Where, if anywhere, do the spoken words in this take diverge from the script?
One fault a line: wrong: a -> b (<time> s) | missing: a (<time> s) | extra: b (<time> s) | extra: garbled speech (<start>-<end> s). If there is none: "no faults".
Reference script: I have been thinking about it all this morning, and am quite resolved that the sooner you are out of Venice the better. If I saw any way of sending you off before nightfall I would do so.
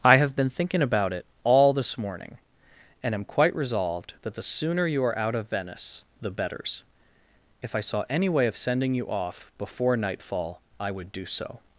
wrong: better -> betters (6.3 s)